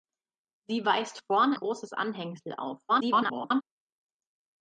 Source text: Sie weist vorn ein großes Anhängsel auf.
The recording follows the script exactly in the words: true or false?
false